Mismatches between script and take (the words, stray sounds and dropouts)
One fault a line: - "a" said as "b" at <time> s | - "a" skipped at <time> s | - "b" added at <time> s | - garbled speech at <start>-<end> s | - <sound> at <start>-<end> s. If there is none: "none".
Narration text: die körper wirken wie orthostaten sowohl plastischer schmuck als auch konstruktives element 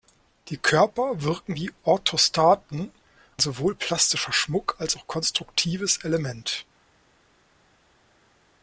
none